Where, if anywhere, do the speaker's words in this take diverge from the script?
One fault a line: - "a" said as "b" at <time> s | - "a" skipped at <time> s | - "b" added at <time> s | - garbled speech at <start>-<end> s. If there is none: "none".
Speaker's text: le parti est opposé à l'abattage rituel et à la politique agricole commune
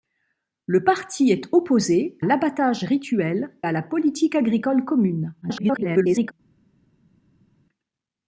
- "à" skipped at 2.2 s
- "et" skipped at 3.6 s
- garbled speech at 5.4-6.3 s